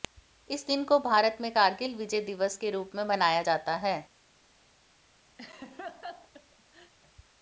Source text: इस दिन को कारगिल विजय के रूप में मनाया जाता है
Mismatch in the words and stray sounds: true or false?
true